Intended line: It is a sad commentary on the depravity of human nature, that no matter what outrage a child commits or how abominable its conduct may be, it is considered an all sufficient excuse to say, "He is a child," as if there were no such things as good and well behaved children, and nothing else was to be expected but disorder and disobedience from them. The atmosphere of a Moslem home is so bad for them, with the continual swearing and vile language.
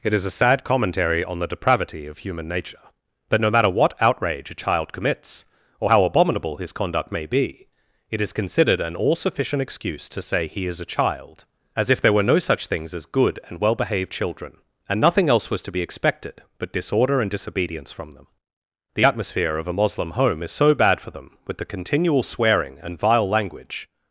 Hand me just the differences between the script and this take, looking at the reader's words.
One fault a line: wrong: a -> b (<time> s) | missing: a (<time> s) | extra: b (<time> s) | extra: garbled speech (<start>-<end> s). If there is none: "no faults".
wrong: its -> his (6.6 s)